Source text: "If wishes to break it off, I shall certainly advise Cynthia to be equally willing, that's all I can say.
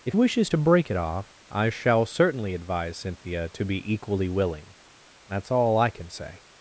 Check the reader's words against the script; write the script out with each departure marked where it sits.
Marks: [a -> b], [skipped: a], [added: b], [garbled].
"If wishes to break it off, I shall certainly advise Cynthia to be equally willing, that's all I can say.